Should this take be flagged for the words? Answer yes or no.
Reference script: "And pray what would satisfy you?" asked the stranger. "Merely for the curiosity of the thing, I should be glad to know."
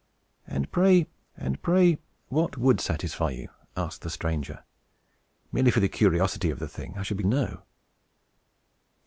yes